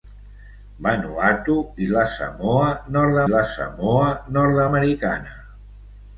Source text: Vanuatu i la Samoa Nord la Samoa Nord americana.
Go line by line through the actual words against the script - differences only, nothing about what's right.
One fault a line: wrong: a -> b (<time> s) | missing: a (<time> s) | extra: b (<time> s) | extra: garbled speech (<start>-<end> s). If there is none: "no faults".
no faults